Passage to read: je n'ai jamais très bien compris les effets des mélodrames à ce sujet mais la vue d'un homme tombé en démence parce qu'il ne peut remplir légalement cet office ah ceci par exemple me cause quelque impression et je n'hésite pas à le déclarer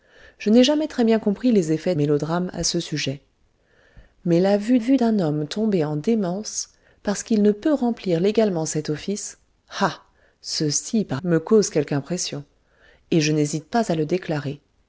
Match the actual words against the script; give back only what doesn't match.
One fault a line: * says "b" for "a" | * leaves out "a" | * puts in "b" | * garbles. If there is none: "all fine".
* leaves out "des"
* puts in "vue"
* leaves out "exemple"